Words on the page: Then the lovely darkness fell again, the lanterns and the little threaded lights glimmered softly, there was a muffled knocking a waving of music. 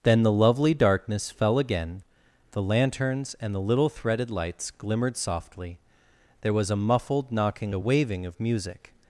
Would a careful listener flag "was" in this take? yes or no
no